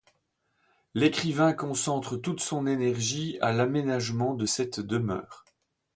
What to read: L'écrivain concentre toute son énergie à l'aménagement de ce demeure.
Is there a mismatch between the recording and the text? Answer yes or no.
yes